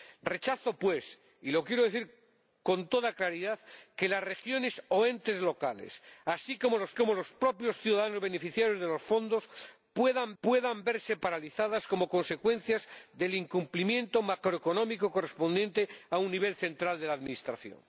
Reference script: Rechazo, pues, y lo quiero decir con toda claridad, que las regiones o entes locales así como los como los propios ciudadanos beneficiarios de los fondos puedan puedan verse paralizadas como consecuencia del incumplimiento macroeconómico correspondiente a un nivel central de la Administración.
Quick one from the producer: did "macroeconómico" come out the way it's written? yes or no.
yes